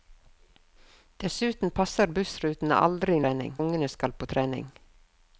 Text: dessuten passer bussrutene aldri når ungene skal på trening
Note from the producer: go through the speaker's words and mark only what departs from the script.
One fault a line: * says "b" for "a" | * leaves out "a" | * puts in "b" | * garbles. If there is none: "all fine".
* says "trening" for "når"